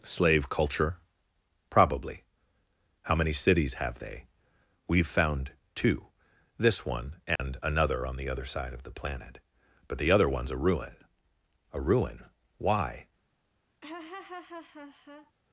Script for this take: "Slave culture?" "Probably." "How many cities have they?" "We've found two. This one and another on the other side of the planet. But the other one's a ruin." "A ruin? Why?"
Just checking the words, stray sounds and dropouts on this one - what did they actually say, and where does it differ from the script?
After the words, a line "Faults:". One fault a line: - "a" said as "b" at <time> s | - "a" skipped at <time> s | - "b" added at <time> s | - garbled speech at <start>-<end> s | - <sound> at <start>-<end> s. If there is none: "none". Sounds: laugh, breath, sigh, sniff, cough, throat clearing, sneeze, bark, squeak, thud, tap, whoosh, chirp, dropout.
"Slave culture?" "Probably." "How many cities have they?" "We've found two. This one and another on the other side of the planet. But the other one's a ruin." "A ruin? Why?"
Faults:
- dropout at 7.4-7.4 s
- laugh at 13.8-15.3 s